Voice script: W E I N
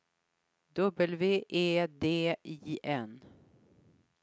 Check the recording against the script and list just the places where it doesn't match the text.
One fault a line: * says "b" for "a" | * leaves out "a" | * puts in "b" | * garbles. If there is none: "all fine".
* puts in "D"